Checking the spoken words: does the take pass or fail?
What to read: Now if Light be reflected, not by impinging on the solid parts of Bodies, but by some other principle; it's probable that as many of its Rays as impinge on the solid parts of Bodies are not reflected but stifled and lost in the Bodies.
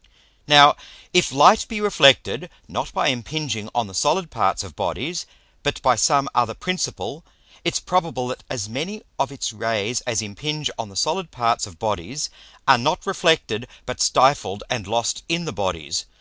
pass